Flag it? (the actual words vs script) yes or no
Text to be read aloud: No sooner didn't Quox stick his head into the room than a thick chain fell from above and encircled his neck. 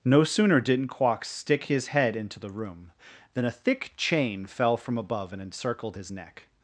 no